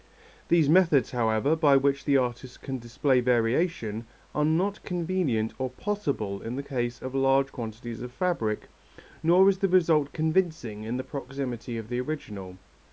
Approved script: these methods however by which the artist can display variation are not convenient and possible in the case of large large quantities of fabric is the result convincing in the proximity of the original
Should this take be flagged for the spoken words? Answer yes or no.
yes